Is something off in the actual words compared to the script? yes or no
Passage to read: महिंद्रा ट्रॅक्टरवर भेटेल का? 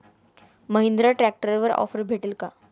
yes